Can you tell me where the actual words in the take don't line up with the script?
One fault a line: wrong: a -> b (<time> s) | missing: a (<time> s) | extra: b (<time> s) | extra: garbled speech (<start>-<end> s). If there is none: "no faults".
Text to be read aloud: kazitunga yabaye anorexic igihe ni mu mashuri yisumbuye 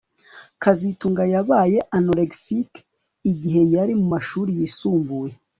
wrong: ni -> yari (3.8 s)